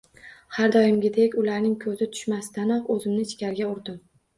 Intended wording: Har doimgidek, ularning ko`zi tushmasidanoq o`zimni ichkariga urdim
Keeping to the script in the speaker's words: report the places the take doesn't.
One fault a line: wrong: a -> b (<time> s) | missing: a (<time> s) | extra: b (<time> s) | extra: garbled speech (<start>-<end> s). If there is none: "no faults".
no faults